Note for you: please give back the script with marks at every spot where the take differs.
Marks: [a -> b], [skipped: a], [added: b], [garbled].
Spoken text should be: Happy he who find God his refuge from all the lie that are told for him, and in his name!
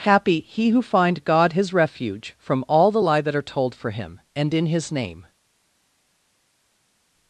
Happy he who find God his refuge from all the lie that are told for him, and in his name!